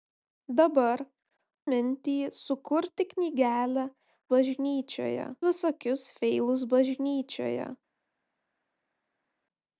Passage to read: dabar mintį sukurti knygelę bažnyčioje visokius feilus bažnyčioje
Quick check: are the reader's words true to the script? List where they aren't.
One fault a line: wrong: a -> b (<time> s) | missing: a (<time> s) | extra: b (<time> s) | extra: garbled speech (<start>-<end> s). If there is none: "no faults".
no faults